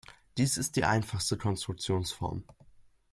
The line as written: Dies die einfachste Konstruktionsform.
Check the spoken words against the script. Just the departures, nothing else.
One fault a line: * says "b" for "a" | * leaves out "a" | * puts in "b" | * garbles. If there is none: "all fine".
* puts in "ist"